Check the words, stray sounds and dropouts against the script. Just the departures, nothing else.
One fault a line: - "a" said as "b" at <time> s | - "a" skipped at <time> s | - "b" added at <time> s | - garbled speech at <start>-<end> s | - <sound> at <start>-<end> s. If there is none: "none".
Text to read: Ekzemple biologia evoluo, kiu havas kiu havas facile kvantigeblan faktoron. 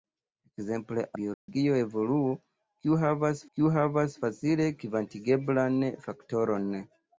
- dropout at 1.3-1.5 s